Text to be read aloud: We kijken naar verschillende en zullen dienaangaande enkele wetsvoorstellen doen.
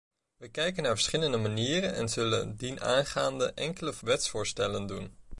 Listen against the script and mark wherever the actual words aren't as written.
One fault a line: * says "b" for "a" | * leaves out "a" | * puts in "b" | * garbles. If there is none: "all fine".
* puts in "manieren"